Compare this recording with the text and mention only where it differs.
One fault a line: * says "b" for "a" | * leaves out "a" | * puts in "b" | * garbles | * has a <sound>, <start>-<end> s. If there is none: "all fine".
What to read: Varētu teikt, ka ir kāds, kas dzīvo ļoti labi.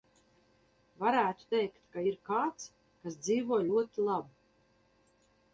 all fine